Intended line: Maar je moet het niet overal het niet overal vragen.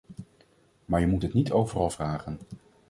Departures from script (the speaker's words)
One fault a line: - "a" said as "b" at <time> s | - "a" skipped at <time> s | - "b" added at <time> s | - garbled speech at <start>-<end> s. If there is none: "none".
- "het niet overal" skipped at 1.9 s